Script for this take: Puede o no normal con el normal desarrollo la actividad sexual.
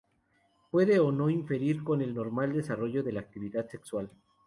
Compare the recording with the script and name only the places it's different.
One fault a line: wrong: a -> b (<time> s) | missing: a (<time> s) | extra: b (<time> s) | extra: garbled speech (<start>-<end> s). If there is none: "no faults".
wrong: normal -> interferir (1.3 s)
extra: de (3.0 s)